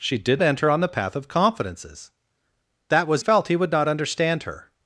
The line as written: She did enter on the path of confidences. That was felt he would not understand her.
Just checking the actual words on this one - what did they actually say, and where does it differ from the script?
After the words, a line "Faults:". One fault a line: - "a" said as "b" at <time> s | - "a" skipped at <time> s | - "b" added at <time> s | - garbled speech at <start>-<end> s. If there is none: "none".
She did enter on the path of confidences. That was felt he would not understand her.
Faults:
none